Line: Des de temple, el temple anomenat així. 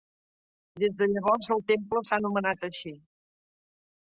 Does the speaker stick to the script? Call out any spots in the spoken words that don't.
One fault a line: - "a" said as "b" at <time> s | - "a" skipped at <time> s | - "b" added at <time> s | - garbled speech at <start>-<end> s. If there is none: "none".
- "temple" said as "llavors" at 1.1 s
- "s'ha" added at 2.1 s